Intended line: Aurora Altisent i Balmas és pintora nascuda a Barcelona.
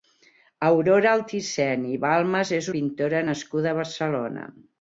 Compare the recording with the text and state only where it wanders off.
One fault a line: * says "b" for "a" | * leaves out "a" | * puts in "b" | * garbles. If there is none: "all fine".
all fine